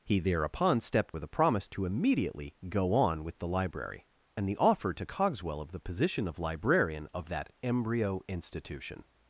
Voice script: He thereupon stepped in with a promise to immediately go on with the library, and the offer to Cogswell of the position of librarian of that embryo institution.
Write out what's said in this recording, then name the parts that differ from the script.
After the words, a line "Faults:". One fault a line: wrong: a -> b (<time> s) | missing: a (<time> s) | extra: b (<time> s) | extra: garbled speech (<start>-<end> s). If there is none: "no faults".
He thereupon stepped with a promise to immediately go on with the library, and the offer to Cogswell of the position of librarian of that embryo institution.
Faults:
missing: in (1.2 s)